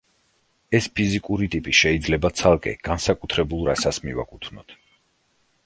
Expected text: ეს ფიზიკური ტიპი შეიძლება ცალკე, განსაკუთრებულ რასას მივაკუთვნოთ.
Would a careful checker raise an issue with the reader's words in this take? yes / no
no